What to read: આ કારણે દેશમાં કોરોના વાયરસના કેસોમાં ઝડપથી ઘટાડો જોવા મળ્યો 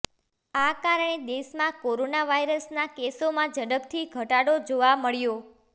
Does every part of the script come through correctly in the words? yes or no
yes